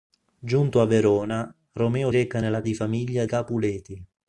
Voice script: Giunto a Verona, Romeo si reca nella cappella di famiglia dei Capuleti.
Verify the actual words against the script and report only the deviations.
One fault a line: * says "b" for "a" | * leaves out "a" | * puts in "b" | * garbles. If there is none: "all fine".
* leaves out "si"
* leaves out "cappella"
* leaves out "dei"